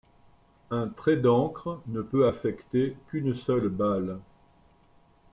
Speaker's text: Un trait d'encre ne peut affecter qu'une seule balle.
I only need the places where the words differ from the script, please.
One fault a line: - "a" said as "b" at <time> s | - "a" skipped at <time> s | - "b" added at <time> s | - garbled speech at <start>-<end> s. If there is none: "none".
none